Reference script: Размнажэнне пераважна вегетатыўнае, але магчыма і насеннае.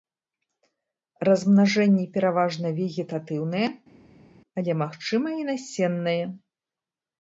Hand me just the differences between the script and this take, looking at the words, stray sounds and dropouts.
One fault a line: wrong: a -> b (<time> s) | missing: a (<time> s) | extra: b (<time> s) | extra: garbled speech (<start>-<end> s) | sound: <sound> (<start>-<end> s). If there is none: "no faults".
no faults